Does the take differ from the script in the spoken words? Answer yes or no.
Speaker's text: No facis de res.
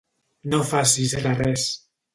no